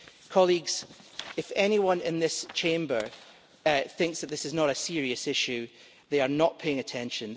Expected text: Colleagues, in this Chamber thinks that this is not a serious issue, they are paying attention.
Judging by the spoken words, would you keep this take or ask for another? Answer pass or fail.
fail